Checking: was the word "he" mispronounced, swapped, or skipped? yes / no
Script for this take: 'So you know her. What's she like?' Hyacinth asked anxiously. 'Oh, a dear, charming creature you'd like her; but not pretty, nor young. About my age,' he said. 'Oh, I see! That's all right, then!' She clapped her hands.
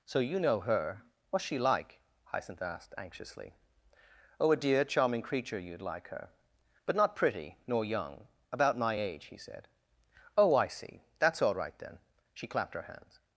no